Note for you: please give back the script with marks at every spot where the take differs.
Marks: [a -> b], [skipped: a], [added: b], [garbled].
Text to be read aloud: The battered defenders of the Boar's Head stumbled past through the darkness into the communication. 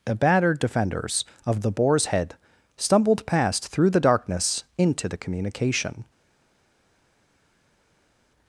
The battered defenders of the Boar's Head stumbled past through the darkness into the communication.